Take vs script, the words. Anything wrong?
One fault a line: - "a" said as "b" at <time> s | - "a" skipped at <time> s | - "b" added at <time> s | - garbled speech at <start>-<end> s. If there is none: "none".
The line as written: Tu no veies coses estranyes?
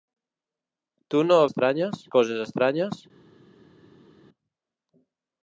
- "veies" said as "estranyes" at 1.5 s